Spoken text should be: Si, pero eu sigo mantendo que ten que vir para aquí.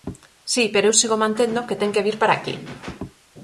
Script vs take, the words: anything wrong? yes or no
no